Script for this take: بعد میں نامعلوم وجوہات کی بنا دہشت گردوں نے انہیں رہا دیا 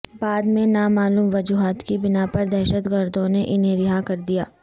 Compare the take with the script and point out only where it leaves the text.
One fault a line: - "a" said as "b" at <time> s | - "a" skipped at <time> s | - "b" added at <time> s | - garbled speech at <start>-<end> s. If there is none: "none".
- "پر" added at 2.3 s
- "کر" added at 4.0 s